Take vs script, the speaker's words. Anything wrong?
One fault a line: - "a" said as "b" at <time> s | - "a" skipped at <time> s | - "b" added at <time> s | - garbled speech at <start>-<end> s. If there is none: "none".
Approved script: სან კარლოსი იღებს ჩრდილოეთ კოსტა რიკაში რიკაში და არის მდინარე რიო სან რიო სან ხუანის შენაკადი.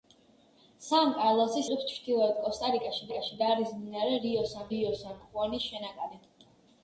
none